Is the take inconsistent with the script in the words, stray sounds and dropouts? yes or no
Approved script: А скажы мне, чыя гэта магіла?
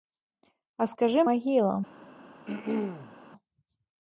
yes